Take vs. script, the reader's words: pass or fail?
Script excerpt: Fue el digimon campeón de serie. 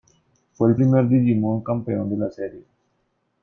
fail